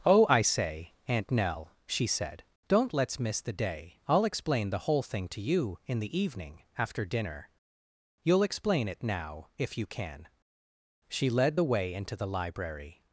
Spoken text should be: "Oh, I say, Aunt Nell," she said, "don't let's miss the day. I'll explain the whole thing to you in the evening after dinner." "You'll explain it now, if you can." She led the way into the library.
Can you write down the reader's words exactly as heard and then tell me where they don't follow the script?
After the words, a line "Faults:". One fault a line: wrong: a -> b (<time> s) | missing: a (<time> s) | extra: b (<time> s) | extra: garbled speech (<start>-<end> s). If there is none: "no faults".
"Oh, I say, Aunt Nell," she said, "don't let's miss the day. I'll explain the whole thing to you in the evening after dinner." "You'll explain it now, if you can." She led the way into the library.
Faults:
no faults